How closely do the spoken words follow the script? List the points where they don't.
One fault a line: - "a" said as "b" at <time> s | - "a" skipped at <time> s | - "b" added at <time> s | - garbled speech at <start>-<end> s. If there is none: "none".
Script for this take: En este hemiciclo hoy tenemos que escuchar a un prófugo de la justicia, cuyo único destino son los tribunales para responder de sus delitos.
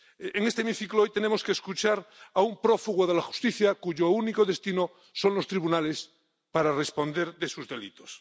none